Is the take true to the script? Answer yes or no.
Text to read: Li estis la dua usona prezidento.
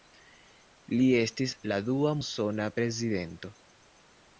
yes